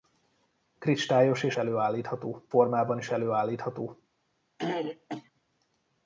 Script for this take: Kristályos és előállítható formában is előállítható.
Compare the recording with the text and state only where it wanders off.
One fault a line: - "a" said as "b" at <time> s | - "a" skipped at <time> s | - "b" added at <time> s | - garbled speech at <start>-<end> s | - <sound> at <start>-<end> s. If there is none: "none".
- throat clearing at 4.6-5.3 s